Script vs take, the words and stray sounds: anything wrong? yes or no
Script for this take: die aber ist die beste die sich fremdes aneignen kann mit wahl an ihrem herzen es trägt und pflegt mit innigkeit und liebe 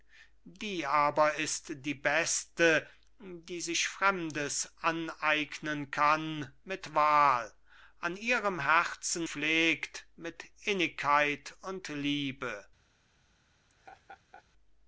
yes